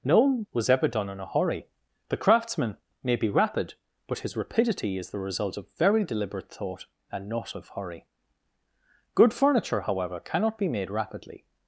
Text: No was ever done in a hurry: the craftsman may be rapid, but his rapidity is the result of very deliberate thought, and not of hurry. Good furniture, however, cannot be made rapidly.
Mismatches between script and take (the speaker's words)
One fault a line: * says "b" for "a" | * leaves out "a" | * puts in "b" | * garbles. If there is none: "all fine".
all fine